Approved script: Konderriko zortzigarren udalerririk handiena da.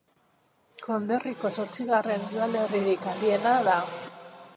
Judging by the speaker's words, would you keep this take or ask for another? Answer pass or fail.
pass